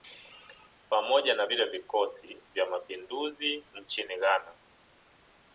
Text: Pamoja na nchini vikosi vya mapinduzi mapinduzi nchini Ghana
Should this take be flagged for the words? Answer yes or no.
yes